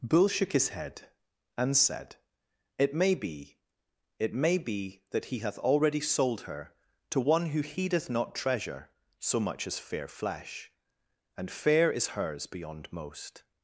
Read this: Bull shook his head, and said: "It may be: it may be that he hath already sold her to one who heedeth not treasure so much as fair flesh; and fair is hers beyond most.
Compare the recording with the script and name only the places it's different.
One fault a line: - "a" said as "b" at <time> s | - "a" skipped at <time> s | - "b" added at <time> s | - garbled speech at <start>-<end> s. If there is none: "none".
none